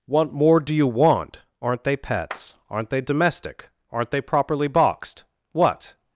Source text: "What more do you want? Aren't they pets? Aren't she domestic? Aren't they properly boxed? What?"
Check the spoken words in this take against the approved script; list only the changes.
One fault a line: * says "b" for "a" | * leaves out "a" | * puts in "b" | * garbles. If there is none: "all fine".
* says "they" for "she"